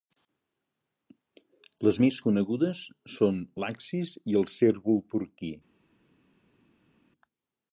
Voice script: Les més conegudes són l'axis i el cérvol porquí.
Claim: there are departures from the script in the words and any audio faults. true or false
false